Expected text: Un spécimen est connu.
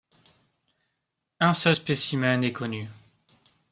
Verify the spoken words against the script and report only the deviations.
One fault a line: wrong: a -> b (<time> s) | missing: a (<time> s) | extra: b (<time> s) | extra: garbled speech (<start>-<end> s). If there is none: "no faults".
extra: seul (1.5 s)